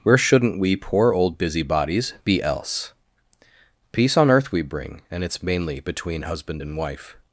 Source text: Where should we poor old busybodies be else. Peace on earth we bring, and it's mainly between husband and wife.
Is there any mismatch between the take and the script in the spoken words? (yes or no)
yes